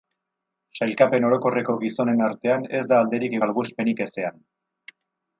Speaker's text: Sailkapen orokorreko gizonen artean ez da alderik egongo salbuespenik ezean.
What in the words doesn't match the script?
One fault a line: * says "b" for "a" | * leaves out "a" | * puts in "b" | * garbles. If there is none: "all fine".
* leaves out "egongo"